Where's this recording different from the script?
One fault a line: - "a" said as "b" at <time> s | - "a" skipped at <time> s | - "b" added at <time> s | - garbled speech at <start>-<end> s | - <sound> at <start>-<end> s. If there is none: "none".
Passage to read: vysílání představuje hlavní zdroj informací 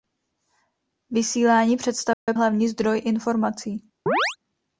- dropout at 2.1-2.3 s
- chirp at 4.1-4.4 s